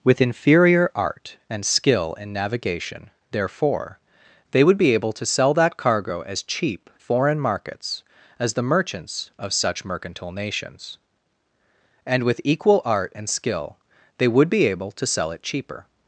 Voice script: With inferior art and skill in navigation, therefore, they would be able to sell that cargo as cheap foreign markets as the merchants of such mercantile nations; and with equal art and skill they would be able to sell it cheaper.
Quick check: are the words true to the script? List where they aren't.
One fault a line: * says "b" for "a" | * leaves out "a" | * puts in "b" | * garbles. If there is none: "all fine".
all fine